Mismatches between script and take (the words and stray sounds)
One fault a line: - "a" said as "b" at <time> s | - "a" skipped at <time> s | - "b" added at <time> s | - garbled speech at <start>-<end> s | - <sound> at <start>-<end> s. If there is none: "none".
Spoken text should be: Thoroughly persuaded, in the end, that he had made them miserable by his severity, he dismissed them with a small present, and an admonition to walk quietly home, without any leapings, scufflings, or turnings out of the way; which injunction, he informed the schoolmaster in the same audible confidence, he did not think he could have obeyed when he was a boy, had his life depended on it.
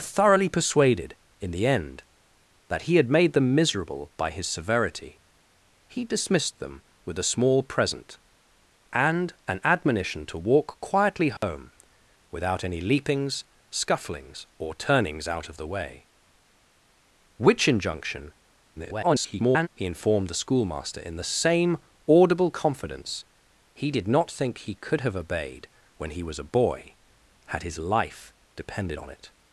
- dropout at 11.4-11.4 s
- garbled speech at 18.8-19.7 s